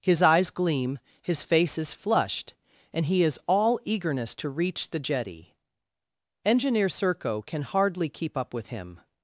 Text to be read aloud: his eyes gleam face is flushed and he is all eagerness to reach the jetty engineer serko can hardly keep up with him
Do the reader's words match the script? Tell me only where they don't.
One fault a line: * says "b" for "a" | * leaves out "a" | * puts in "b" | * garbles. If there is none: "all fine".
* puts in "his"